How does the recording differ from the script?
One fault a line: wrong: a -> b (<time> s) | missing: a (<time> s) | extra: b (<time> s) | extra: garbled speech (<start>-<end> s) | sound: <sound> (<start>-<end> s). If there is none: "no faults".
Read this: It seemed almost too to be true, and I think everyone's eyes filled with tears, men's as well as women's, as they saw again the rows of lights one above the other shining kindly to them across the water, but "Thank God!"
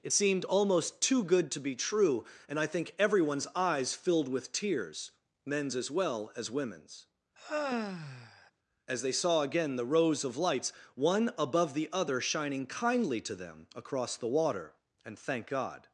extra: good (1.2 s)
sound: sigh (7.4-8.5 s)
wrong: but -> and (15.0 s)